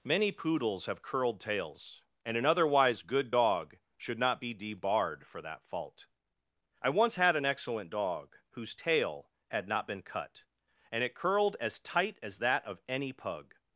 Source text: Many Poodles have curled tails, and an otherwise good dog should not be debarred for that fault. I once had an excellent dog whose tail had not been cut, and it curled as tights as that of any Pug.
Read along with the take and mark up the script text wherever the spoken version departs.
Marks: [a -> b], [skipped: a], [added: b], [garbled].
Many Poodles have curled tails, and an otherwise good dog should not be debarred for that fault. I once had an excellent dog whose tail had not been cut, and it curled as [tights -> tight] as that of any Pug.